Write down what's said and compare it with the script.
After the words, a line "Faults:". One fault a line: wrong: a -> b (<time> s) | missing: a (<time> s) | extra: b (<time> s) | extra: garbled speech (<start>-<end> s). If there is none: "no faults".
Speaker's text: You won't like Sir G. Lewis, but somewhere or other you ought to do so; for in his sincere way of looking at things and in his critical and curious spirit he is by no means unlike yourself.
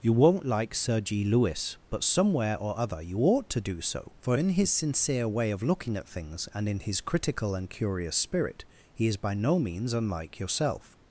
You won't like Sir G. Lewis, but somewhere or other you ought to do so; for in his sincere way of looking at things and in his critical and curious spirit he is by no means unlike yourself.
Faults:
no faults